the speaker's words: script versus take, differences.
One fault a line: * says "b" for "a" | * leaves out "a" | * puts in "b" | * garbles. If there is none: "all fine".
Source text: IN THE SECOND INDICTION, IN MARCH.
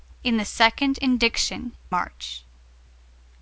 * leaves out "IN"